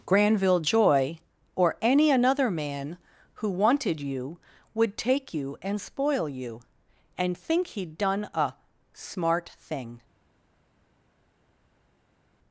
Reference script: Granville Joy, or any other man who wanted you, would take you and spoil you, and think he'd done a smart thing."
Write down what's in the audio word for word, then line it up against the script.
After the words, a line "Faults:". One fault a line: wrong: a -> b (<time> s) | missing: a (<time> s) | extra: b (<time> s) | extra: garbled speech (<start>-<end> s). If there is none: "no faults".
Granville Joy, or any another man who wanted you, would take you and spoil you, and think he'd done a smart thing."
Faults:
wrong: other -> another (2.1 s)